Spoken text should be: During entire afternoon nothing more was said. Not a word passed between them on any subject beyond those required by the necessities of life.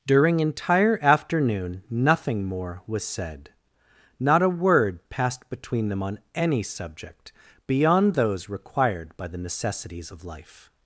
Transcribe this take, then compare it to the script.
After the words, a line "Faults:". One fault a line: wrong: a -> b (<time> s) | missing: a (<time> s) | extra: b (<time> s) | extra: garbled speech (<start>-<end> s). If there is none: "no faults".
During entire afternoon nothing more was said. Not a word passed between them on any subject beyond those required by the necessities of life.
Faults:
no faults